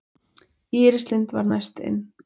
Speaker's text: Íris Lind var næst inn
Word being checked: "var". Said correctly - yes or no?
yes